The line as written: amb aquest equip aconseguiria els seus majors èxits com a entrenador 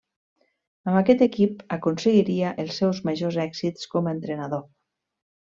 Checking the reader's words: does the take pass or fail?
pass